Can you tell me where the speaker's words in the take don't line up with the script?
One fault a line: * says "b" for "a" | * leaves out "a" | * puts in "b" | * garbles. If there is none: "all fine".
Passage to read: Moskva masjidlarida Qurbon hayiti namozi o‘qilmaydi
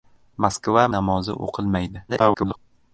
* leaves out "masjidlarida Qurbon hayiti"
* garbles